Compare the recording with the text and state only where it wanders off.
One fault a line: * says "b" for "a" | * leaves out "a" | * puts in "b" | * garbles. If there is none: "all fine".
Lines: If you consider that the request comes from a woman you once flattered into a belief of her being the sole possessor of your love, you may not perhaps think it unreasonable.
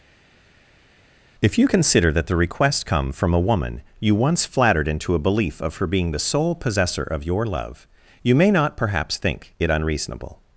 * says "come" for "comes"